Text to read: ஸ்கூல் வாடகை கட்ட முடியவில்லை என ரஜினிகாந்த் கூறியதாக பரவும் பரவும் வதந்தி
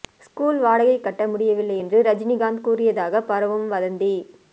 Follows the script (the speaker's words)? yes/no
no